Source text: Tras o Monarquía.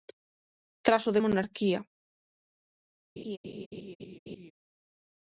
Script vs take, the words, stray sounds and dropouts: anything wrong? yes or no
yes